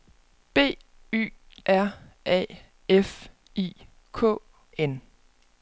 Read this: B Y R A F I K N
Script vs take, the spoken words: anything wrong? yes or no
no